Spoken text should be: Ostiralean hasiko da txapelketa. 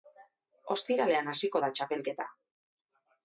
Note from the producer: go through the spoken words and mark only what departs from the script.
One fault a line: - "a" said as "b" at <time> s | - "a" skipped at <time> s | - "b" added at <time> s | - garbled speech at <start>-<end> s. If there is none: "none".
none